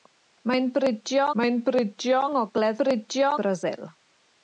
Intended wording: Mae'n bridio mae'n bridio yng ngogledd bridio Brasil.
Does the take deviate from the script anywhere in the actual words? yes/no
no